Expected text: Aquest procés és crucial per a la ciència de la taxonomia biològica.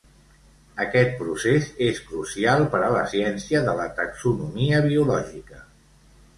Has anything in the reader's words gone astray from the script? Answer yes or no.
no